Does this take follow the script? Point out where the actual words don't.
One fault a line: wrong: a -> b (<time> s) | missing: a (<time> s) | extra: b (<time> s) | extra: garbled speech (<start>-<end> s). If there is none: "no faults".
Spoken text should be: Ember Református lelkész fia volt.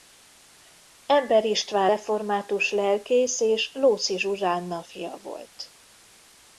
extra: István (1.4 s)
extra: és Lóczy Zsuzsánna (3.4 s)